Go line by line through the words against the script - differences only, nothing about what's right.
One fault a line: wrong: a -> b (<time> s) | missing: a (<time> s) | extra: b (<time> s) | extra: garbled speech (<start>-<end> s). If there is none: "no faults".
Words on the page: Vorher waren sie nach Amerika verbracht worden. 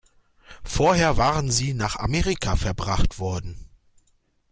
no faults